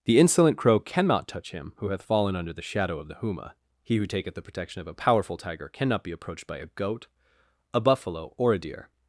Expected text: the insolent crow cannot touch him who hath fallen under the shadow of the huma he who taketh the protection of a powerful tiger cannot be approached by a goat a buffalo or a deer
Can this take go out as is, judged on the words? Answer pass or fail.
pass